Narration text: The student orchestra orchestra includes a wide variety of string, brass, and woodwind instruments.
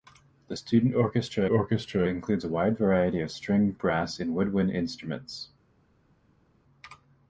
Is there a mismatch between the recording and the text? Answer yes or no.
no